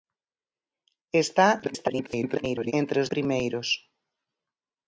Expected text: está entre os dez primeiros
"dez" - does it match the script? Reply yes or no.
no